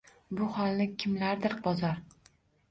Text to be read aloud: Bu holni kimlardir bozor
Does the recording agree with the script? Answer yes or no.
yes